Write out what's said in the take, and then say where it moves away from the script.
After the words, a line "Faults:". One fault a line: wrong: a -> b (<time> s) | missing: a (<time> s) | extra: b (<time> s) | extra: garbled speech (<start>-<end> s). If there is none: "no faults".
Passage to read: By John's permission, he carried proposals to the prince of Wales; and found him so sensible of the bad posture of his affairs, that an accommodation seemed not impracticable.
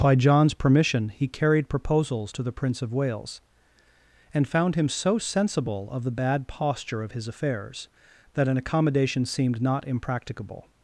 By John's permission, he carried proposals to the prince of Wales; and found him so sensible of the bad posture of his affairs, that an accommodation seemed not impracticable.
Faults:
no faults